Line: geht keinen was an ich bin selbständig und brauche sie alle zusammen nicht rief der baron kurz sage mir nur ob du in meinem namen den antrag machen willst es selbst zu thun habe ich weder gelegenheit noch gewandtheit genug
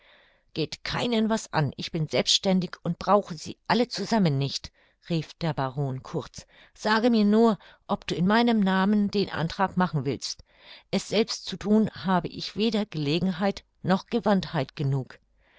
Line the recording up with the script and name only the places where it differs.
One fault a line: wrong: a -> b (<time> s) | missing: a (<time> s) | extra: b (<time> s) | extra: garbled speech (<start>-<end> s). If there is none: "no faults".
no faults